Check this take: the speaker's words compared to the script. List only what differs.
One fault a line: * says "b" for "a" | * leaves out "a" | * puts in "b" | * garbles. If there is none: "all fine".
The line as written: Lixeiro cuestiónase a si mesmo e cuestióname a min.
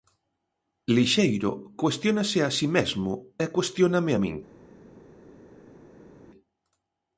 all fine